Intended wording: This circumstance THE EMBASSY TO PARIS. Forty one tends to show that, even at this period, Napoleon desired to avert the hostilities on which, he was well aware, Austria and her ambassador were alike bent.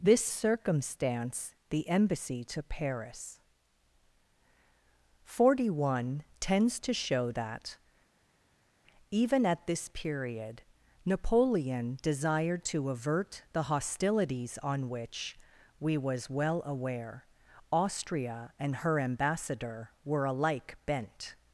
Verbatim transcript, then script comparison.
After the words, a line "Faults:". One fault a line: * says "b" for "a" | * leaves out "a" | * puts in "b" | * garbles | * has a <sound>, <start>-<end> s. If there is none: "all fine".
This circumstance THE EMBASSY TO PARIS. Forty one tends to show that, even at this period, Napoleon desired to avert the hostilities on which, we was well aware, Austria and her ambassador were alike bent.
Faults:
* says "we" for "he"